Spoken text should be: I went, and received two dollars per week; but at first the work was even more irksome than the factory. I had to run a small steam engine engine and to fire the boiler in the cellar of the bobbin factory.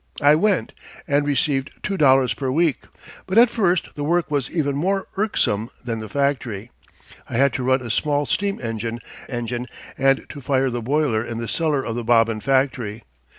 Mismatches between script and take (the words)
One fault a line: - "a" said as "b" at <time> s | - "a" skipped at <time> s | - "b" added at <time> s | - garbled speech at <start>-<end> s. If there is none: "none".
none